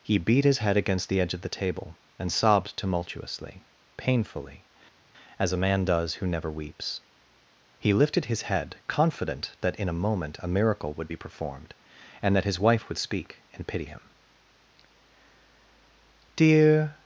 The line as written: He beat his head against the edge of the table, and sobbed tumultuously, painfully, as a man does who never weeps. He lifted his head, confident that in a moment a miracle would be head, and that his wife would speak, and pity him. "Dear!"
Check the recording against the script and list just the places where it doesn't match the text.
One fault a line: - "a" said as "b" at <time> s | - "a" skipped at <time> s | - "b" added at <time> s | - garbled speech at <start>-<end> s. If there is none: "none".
- "head" said as "performed" at 11.2 s